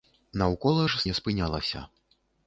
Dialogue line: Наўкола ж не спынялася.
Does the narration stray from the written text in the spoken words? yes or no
no